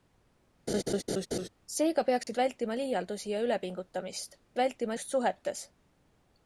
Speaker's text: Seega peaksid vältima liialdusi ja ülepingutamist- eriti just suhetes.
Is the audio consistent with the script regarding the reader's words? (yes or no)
no